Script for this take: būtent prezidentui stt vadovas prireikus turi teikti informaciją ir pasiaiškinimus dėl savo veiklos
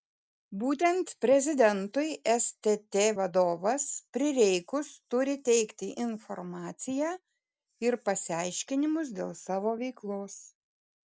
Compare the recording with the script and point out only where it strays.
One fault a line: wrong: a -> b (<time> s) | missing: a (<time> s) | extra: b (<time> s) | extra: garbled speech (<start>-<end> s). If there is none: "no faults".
no faults